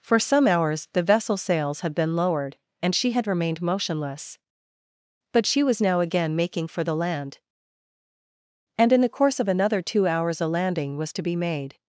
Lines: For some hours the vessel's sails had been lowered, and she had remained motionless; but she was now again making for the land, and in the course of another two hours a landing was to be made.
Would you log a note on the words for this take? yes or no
no